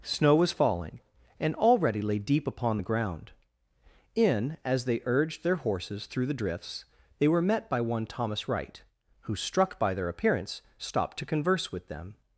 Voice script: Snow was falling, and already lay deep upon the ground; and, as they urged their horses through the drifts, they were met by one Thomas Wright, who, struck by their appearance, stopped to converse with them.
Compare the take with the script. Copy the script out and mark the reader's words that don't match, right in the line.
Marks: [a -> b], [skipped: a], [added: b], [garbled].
Snow was falling, and already lay deep upon the ground; [and, -> in] as they urged their horses through the drifts, they were met by one Thomas Wright, who, struck by their appearance, stopped to converse with them.